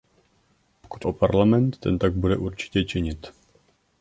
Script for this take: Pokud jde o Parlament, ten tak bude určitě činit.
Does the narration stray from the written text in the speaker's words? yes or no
yes